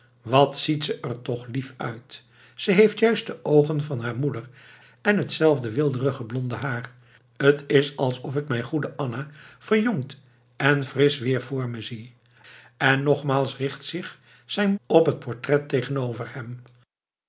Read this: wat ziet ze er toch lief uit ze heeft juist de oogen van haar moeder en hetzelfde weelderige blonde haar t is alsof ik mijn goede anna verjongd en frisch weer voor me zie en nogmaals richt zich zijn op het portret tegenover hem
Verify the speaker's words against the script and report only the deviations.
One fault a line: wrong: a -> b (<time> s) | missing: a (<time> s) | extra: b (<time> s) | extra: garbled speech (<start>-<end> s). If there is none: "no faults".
no faults